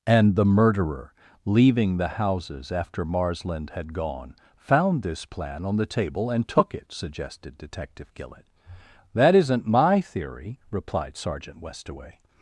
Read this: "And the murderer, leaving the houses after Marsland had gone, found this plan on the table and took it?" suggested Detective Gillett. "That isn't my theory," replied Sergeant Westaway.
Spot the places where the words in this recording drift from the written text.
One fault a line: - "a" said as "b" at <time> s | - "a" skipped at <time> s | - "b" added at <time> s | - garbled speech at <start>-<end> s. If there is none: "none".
none